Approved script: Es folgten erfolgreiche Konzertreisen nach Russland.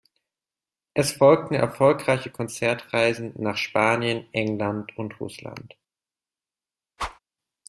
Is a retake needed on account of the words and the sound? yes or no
yes